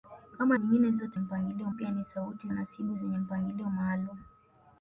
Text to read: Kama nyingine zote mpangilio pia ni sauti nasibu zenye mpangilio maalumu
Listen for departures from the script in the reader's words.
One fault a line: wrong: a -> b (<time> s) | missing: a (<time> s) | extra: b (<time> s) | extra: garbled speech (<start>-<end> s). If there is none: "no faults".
no faults